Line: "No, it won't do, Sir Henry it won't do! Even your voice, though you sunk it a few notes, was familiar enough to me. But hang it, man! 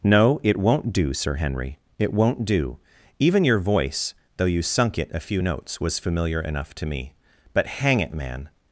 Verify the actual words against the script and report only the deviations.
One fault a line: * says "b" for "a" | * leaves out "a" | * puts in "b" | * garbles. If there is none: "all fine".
all fine